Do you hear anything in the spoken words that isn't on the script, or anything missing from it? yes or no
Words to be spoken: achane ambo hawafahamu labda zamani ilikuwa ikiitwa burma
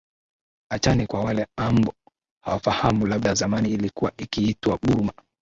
yes